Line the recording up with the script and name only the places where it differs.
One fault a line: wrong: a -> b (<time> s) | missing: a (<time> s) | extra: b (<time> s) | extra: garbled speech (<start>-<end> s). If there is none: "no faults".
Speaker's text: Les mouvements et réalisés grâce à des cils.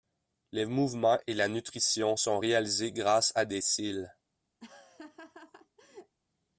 extra: la nutrition sont (1.4 s)